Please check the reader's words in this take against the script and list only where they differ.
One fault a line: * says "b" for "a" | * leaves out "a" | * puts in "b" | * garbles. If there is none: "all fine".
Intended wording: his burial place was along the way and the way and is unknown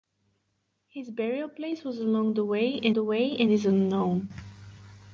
all fine